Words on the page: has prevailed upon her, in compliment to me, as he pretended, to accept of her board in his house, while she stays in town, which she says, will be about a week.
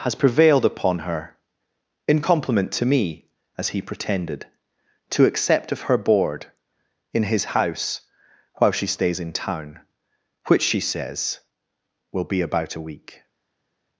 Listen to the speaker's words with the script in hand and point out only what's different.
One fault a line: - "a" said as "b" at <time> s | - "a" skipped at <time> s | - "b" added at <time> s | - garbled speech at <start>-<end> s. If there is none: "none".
none